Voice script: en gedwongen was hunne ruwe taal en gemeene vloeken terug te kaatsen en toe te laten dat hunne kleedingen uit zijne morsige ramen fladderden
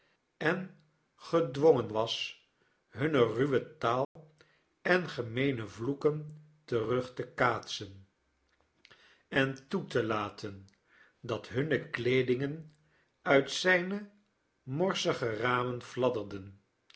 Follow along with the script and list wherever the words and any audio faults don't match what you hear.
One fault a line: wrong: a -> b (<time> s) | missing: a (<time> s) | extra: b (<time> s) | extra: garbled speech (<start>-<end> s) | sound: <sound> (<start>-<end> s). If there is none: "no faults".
sound: dropout (4.0-4.2 s)